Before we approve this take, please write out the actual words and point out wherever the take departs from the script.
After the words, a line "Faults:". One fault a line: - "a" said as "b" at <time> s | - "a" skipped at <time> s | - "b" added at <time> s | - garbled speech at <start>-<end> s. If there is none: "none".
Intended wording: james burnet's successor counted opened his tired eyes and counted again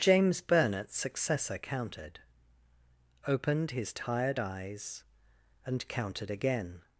james burnet's successor counted opened his tired eyes and counted again
Faults:
none